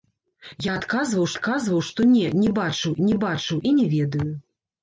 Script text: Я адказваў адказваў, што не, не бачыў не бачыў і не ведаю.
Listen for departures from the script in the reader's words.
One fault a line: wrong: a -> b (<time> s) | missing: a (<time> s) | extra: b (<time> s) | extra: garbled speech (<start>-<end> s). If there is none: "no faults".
no faults